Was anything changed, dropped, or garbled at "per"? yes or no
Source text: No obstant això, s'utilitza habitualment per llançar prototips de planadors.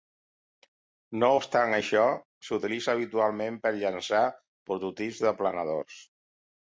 no